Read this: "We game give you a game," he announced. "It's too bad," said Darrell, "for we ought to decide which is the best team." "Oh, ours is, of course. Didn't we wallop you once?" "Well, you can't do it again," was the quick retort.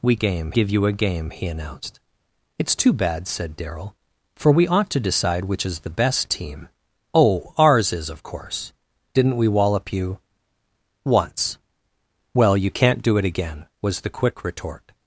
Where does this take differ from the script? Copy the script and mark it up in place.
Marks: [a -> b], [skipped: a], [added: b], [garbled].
"We game give you a game," he announced. "It's too bad," said Darrell, "for we ought to decide which is the best team." "Oh, ours is, of course. Didn't we wallop you once?" "Well, you can't do it again," was the quick retort.